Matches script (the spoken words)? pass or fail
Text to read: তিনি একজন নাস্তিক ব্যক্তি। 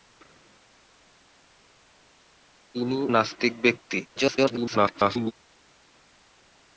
fail